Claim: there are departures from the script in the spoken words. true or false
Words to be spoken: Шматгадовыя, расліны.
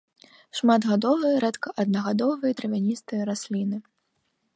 true